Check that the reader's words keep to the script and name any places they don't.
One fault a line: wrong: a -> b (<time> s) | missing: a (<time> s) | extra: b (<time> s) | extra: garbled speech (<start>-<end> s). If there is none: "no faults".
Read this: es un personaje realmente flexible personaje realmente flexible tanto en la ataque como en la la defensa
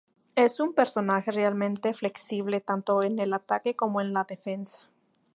missing: personaje realmente flexible (2.6 s)
wrong: la -> el (3.2 s)
missing: la (4.2 s)